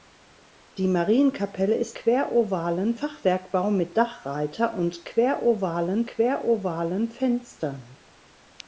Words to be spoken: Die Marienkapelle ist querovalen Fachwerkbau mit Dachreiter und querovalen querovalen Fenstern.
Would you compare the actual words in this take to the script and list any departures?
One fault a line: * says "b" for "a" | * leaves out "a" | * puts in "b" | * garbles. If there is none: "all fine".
all fine